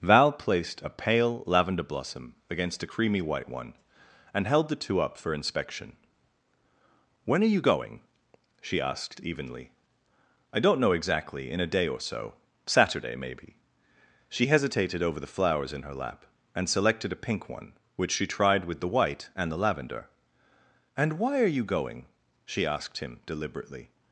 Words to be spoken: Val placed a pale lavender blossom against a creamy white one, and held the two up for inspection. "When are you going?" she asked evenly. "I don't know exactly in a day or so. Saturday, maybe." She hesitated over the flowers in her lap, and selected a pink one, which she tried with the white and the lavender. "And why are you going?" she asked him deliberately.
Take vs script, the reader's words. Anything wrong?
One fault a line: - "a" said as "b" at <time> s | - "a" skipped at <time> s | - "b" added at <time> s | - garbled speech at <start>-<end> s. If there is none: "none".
none